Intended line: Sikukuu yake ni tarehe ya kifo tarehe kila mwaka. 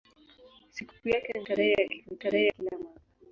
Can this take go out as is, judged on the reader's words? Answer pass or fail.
pass